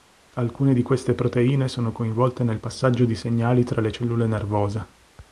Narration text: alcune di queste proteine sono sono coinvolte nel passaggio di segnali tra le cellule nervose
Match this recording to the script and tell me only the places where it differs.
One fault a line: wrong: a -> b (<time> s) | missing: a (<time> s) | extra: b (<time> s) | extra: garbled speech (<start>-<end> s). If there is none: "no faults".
missing: sono (1.9 s)